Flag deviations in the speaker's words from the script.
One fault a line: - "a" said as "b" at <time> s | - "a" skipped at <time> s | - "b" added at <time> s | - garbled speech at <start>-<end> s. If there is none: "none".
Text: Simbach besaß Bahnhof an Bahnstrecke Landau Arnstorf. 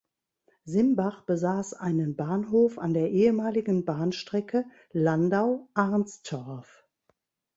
- "einen" added at 1.8 s
- "der ehemaligen" added at 3.0 s